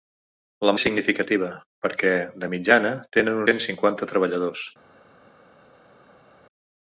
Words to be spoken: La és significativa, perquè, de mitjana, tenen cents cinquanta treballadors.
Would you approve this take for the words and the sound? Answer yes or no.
yes